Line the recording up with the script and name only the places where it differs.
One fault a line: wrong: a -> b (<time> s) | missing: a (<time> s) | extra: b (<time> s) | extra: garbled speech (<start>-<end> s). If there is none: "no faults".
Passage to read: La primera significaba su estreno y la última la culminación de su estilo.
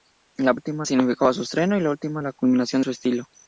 wrong: primera -> última (0.5 s)
missing: de (2.8 s)